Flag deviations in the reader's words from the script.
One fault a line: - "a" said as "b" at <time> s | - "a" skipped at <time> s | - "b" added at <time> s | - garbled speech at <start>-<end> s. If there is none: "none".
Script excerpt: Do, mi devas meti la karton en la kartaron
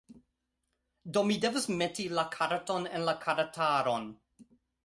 none